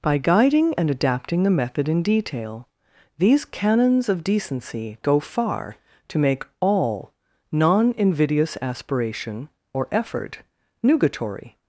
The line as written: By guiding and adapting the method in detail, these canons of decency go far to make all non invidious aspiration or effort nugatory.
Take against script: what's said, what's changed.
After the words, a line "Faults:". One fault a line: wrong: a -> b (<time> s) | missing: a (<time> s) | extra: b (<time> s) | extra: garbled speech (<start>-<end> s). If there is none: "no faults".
By guiding and adapting the method in detail, these canons of decency go far to make all non invidious aspiration or effort nugatory.
Faults:
no faults